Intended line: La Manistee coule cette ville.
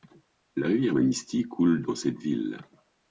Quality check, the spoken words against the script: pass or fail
fail